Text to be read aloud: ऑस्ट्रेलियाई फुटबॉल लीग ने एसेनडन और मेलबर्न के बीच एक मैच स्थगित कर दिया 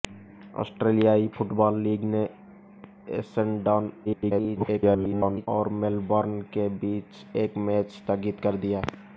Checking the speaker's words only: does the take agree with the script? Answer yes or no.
no